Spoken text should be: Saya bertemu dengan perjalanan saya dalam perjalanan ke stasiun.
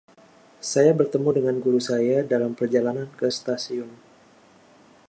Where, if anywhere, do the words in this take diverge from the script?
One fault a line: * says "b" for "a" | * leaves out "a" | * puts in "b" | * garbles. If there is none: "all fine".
* says "guru" for "perjalanan"